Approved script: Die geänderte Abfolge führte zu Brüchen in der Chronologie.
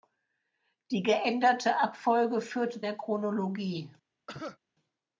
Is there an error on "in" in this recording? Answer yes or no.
yes